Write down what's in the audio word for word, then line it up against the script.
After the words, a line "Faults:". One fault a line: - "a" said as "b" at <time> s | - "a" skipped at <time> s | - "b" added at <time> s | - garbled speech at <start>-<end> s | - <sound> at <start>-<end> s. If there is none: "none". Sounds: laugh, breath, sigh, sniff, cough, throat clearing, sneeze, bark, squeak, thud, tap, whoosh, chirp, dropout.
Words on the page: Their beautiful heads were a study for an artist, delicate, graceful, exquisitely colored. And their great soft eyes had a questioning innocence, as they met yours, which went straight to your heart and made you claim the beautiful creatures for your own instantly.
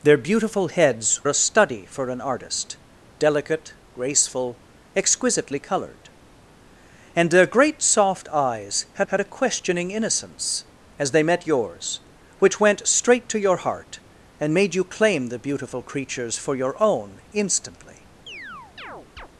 Their beautiful heads a study for an artist, delicate, graceful, exquisitely colored. And their great soft eyes had had a questioning innocence, as they met yours, which went straight to your heart and made you claim the beautiful creatures for your own instantly.
Faults:
- "were" skipped at 1.2 s
- "had" added at 9.1 s
- chirp at 18.3-19.3 s